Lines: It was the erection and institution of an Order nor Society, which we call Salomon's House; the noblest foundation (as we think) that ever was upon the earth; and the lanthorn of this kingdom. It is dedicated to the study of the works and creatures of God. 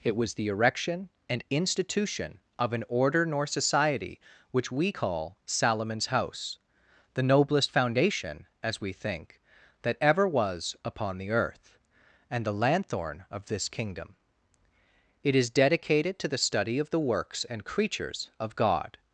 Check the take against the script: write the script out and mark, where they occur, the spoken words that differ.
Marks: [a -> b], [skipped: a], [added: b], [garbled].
It was the erection and institution of an Order nor Society, which we call Salomon's House; the noblest foundation (as we think) that ever was upon the earth; and the lanthorn of this kingdom. It is dedicated to the study of the works and creatures of God.